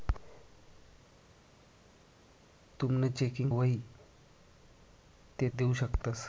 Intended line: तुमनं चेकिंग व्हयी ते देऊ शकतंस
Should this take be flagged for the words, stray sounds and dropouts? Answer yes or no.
no